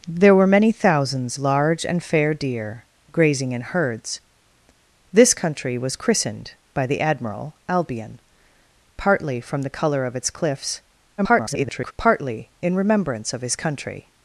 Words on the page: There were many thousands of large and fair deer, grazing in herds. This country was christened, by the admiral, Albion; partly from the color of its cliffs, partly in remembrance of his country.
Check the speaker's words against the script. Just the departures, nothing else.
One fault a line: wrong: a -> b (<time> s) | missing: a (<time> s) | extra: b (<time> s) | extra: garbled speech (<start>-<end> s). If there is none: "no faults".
missing: of (1.4 s)
extra: garbled speech (11.2-11.9 s)